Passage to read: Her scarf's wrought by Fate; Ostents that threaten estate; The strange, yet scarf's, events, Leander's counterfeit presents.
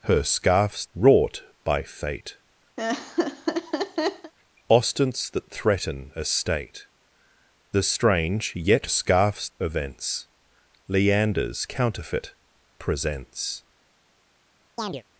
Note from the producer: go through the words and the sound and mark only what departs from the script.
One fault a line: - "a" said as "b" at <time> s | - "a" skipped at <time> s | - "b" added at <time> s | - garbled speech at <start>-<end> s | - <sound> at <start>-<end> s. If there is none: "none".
- laugh at 2.8-4.3 s
- chirp at 14.8-15.0 s